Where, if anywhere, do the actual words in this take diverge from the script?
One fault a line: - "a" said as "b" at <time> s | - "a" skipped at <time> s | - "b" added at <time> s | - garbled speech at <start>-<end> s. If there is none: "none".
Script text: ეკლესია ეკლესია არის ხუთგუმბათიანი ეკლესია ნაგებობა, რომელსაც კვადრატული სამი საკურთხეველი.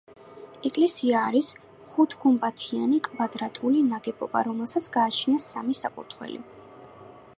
- "ეკლესია" skipped at 1.2 s
- "ეკლესია" said as "კვადრატული" at 3.1 s
- "კვადრატული" said as "გააჩნია" at 5.0 s